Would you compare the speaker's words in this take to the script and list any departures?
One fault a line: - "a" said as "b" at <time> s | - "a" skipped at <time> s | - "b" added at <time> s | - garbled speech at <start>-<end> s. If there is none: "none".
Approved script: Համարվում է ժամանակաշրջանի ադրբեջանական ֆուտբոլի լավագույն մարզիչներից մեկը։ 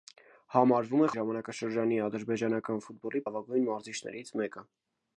none